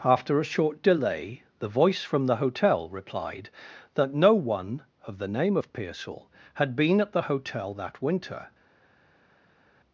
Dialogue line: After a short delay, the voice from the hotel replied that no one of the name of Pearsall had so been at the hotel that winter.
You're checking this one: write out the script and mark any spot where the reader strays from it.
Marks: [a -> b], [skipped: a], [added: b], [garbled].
After a short delay, the voice from the hotel replied that no one of the name of Pearsall had [skipped: so] been at the hotel that winter.